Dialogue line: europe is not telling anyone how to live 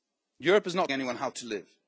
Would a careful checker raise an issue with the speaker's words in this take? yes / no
yes